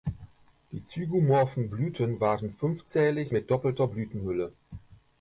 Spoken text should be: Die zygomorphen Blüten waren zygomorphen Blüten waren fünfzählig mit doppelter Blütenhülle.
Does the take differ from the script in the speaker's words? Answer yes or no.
yes